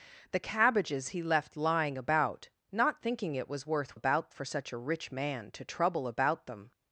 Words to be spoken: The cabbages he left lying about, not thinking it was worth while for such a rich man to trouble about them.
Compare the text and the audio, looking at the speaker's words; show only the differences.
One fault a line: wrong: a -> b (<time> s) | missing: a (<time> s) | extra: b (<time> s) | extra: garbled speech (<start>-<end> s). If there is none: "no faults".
wrong: while -> about (3.9 s)